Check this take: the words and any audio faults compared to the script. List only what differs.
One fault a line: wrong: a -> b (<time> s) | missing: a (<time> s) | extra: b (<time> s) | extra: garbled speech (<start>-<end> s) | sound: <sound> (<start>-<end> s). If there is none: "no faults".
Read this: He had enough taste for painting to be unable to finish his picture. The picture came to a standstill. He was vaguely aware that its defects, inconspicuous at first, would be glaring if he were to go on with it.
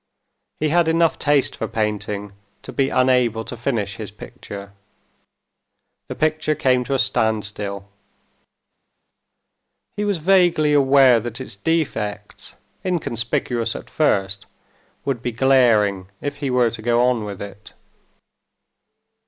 no faults